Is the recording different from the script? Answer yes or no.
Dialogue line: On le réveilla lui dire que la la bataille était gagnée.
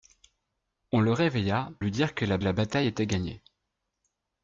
no